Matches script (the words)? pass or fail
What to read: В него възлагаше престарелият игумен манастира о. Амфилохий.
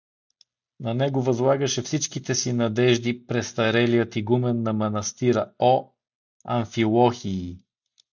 fail